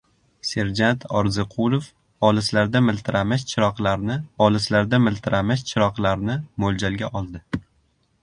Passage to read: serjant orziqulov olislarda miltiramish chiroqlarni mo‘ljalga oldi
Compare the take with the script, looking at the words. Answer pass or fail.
fail